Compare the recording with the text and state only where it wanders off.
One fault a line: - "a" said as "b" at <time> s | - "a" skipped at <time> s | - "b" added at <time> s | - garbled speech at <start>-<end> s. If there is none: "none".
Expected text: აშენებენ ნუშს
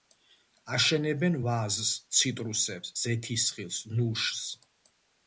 - "ვაზს ციტრუსებს ზეთისხილს" added at 1.5 s